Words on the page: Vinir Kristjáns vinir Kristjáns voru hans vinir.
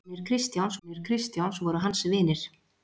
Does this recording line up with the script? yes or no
yes